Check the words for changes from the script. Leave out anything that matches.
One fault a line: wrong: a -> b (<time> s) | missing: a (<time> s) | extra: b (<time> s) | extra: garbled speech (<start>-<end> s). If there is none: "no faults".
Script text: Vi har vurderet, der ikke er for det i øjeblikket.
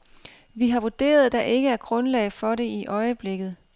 extra: grundlag (1.8 s)